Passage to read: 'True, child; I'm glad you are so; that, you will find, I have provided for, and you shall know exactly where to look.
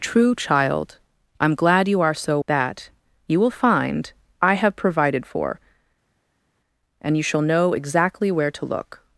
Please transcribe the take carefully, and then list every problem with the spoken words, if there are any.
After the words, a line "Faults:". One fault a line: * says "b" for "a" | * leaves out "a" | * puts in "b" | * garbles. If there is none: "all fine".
'True, child; I'm glad you are so; that, you will find, I have provided for, and you shall know exactly where to look.
Faults:
all fine